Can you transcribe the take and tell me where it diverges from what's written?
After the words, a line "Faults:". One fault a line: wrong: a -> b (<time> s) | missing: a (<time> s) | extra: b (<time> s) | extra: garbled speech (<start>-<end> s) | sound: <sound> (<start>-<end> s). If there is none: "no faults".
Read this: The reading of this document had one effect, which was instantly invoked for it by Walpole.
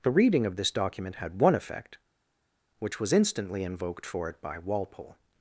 The reading of this document had one effect, which was instantly invoked for it by Walpole.
Faults:
no faults